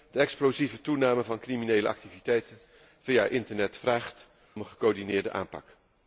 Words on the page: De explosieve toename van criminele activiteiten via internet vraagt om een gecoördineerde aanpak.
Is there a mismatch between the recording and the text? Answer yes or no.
yes